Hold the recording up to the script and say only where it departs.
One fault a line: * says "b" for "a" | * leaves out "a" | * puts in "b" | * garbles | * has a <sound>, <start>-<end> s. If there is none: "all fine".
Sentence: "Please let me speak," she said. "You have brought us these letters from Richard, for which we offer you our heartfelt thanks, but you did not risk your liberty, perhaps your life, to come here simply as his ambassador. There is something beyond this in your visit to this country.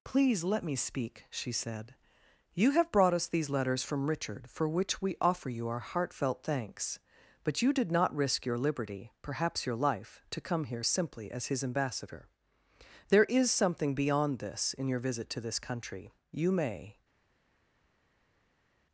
* puts in "You may"